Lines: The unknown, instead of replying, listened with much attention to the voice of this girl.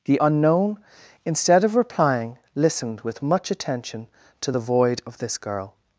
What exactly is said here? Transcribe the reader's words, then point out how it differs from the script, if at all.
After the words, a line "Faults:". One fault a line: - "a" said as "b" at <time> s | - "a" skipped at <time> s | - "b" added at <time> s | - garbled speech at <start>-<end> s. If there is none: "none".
The unknown, instead of replying, listened with much attention to the void of this girl.
Faults:
- "voice" said as "void" at 4.6 s